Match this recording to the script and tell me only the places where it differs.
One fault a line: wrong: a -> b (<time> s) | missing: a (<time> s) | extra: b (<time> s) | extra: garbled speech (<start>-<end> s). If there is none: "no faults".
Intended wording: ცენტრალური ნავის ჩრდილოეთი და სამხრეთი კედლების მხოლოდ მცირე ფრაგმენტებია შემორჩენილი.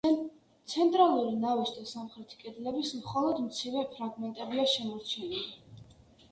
missing: ჩრდილოეთი (1.7 s)